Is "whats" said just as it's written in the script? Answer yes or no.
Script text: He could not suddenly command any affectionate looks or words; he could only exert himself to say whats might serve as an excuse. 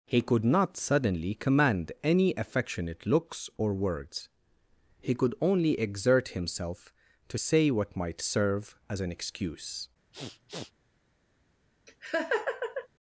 no